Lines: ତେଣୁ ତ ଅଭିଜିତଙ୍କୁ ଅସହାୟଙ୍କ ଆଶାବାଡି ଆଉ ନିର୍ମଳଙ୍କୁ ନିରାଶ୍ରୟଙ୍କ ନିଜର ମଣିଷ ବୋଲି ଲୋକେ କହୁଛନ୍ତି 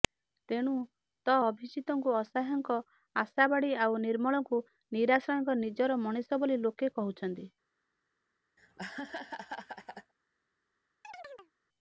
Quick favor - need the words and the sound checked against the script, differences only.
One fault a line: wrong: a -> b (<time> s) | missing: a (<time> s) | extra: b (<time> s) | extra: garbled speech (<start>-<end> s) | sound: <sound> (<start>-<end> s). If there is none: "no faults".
sound: laugh (8.6-10.1 s)
sound: chirp (11.0-11.5 s)